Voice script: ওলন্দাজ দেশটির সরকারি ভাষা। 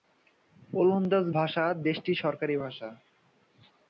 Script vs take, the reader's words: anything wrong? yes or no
yes